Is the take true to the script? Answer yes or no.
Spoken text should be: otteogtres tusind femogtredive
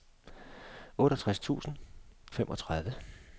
yes